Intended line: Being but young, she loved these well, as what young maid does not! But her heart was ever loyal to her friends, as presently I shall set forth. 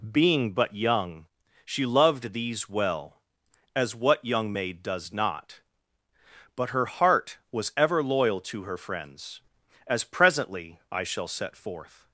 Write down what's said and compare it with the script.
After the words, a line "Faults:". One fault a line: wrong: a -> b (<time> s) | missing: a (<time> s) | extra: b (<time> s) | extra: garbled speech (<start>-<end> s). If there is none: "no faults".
Being but young, she loved these well, as what young maid does not! But her heart was ever loyal to her friends, as presently I shall set forth.
Faults:
no faults